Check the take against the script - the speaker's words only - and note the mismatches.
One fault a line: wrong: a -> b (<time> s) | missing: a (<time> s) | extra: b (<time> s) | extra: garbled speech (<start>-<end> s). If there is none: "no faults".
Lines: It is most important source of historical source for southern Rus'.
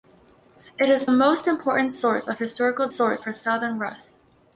no faults